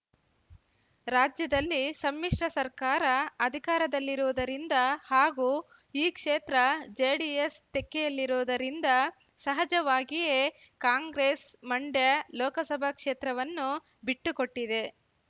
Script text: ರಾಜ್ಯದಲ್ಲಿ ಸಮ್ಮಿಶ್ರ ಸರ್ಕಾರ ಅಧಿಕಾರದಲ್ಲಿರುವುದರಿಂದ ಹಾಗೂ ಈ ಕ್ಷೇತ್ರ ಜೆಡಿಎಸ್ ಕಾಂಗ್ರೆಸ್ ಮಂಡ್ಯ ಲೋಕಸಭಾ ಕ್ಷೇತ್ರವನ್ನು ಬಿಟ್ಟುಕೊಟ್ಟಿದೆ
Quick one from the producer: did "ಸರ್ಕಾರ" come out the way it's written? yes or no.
yes